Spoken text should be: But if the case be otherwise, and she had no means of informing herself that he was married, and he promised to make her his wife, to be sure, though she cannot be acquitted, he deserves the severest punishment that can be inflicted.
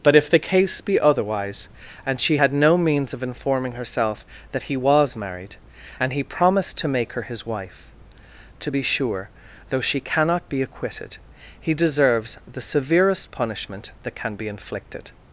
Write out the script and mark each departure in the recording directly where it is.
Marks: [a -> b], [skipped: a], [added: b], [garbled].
But if the case be otherwise, and she had no means of informing herself that he was married, and he promised to make her his wife, to be sure, though she cannot be acquitted, he deserves the severest punishment that can be inflicted.